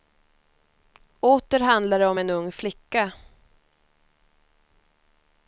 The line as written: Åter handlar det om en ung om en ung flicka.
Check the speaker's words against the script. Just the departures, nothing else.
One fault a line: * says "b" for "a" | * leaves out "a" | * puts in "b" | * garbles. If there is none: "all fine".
* leaves out "om en ung"